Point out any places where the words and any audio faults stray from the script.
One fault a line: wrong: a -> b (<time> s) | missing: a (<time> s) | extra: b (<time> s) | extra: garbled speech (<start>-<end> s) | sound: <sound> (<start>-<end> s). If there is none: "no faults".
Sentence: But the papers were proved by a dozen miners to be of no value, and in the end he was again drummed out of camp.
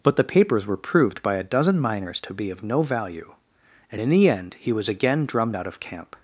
no faults